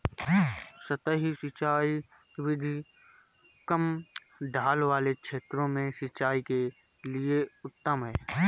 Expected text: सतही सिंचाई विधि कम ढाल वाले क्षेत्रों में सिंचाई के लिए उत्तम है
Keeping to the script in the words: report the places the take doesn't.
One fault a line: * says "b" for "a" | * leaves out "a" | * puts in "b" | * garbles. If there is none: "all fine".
all fine